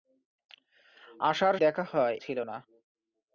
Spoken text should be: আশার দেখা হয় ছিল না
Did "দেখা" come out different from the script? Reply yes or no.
no